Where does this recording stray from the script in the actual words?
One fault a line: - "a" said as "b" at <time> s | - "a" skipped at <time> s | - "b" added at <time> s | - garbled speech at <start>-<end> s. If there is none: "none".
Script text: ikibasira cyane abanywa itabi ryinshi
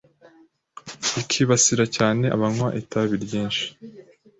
none